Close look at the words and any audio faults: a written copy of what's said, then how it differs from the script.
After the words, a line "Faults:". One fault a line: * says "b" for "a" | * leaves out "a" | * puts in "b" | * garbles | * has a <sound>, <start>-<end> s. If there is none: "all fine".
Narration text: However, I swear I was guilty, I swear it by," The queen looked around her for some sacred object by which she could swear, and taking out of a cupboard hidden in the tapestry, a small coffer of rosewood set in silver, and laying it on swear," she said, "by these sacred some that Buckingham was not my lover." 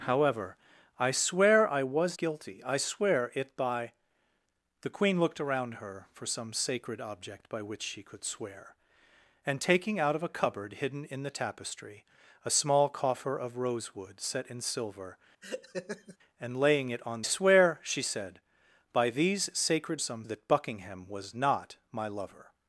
However, I swear I was guilty, I swear it by," The queen looked around her for some sacred object by which she could swear, and taking out of a cupboard hidden in the tapestry, a small coffer of rosewood set in silver, and laying it on swear," she said, "by these sacred some that Buckingham was not my lover."
Faults:
* has a laugh, 15.4-16.2 s